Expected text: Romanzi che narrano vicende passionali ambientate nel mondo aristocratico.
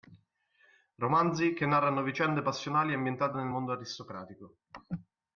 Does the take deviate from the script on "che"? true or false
false